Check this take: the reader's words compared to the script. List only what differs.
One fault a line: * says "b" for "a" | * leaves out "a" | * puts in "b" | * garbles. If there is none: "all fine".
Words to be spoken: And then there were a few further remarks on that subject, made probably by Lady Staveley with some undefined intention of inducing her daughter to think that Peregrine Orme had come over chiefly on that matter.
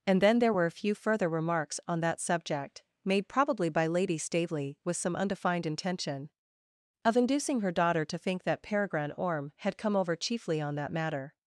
all fine